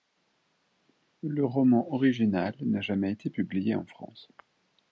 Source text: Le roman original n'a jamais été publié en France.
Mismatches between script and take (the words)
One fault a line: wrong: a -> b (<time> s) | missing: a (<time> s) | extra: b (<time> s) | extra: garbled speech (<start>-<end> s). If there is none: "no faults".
no faults